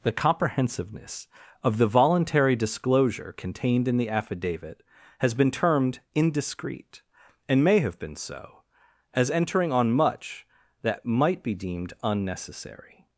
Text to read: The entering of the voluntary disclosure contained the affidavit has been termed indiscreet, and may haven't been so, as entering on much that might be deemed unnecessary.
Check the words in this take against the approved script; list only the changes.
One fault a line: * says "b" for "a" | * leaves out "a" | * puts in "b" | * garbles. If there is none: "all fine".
* says "comprehensiveness" for "entering"
* puts in "in"
* says "have" for "haven't"